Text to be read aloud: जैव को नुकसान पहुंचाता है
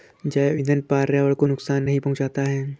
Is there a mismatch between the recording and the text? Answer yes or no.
yes